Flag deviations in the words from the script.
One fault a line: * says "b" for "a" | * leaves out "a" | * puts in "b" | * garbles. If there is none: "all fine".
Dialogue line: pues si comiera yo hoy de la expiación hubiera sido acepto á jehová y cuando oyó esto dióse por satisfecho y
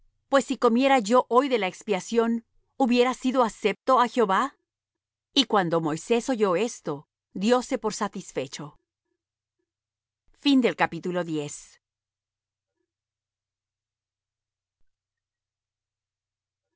* puts in "moisés"